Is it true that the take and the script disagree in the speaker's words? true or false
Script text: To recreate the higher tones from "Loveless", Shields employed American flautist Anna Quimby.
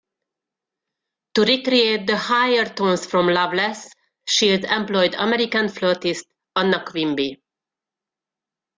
false